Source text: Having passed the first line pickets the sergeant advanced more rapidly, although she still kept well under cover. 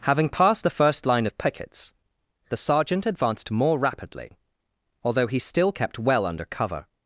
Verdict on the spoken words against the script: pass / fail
fail